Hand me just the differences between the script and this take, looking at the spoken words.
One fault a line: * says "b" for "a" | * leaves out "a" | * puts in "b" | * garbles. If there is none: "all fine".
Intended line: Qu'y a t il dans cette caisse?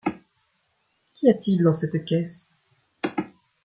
all fine